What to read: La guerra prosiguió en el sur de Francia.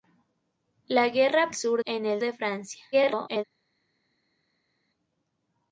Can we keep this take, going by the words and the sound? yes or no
no